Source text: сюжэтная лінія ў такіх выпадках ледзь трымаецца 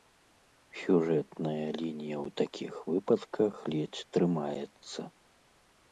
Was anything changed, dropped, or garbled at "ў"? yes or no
no